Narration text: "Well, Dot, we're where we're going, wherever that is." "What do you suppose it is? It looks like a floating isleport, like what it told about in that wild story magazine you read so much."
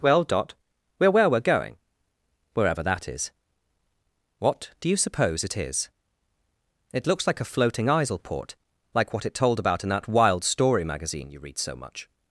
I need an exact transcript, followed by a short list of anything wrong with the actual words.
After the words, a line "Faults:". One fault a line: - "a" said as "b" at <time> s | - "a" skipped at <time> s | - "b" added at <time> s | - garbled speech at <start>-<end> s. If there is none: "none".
"Well, Dot, we're where we're going, wherever that is." "What do you suppose it is? It looks like a floating isleport, like what it told about in that wild story magazine you read so much."
Faults:
none